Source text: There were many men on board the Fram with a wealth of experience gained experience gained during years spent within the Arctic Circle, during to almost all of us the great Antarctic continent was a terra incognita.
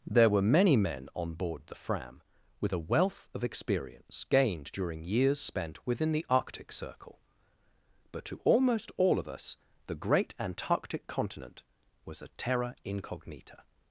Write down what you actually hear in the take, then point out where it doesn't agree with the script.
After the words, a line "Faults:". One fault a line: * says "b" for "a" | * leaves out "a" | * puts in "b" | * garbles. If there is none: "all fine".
There were many men on board the Fram with a wealth of experience gained during years spent within the Arctic Circle, but to almost all of us the great Antarctic continent was a terra incognita.
Faults:
* leaves out "experience gained"
* says "but" for "during"